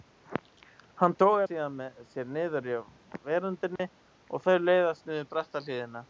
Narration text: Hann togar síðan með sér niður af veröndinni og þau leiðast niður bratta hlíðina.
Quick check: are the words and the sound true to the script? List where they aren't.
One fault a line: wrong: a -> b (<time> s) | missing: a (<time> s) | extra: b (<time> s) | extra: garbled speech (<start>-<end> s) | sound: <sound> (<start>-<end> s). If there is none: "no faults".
sound: dropout (3.8-3.8 s)